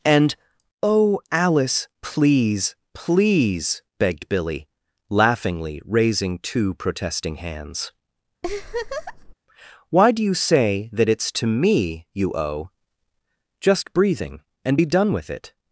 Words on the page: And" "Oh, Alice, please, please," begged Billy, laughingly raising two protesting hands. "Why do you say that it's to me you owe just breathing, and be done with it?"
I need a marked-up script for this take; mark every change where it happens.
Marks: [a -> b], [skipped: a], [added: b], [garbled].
And" "Oh, Alice, please, please," begged Billy, laughingly raising two protesting hands. "Why do you say that it's to me you owe just breathing, and be done with it?"